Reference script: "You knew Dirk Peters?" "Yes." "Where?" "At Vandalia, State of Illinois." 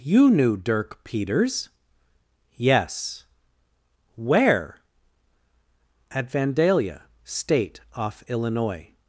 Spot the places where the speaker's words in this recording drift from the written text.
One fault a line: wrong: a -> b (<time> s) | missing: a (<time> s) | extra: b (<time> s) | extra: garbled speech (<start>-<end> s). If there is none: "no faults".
wrong: of -> off (7.9 s)